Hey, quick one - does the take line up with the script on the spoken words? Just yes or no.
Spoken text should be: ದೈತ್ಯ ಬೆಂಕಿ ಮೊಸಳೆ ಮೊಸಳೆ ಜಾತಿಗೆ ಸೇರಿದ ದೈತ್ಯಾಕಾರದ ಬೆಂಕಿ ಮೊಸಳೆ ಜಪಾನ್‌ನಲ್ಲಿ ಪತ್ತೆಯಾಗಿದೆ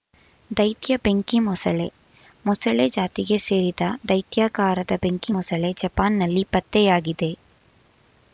yes